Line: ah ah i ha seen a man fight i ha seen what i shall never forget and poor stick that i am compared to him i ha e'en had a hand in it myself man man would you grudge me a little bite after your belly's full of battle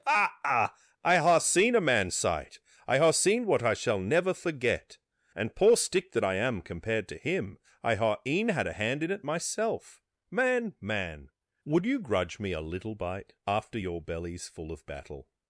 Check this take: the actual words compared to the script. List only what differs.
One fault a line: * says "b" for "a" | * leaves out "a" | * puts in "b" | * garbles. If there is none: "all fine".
* says "sight" for "fight"